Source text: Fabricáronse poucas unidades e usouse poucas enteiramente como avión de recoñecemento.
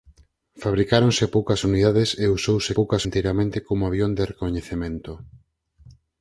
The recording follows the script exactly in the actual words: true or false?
true